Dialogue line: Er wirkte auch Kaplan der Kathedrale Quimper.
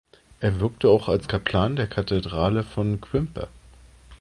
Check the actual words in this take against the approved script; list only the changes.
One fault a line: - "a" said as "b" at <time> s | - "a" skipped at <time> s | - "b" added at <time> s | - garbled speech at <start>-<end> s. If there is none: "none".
- "als" added at 1.1 s
- "von" added at 2.6 s